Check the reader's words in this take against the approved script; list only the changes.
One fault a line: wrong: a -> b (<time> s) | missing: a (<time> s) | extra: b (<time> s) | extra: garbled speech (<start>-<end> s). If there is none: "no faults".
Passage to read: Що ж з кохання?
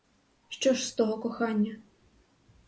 extra: того (0.9 s)